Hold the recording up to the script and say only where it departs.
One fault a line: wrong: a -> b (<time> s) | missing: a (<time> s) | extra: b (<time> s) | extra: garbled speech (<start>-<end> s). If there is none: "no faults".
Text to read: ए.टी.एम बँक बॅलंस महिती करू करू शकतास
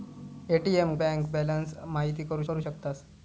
no faults